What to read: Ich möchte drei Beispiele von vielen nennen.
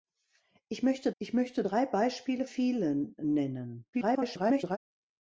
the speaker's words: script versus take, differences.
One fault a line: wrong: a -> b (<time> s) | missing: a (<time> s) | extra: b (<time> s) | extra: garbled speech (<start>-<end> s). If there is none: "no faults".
extra: ich möchte (1.2 s)
missing: von (2.4 s)
extra: garbled speech (3.9-4.8 s)